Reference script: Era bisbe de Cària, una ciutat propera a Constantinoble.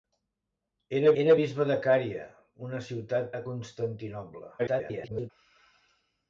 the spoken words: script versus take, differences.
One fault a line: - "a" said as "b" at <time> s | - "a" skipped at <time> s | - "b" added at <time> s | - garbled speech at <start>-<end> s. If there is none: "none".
- "era" added at 1.2 s
- "propera" skipped at 3.3 s
- garbled speech at 4.6-5.3 s